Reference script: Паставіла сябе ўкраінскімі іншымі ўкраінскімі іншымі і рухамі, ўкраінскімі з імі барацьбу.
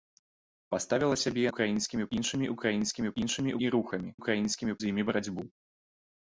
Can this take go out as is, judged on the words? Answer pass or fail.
pass